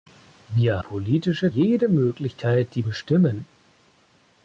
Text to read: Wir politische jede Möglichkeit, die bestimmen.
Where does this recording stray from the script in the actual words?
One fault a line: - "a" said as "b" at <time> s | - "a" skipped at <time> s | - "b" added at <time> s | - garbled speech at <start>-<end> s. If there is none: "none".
none